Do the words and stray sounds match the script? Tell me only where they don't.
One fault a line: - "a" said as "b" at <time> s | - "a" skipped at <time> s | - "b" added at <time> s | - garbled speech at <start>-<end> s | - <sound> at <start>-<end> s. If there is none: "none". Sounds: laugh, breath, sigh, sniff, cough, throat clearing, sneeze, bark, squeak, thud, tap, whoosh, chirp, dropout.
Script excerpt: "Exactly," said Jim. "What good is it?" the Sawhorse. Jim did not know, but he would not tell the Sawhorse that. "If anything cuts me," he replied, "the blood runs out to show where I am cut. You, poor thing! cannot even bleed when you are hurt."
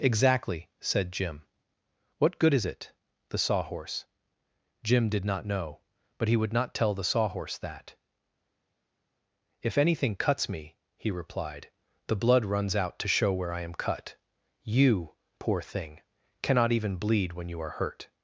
none